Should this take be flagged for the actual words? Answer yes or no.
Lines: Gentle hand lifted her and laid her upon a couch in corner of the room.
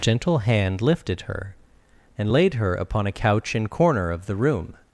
no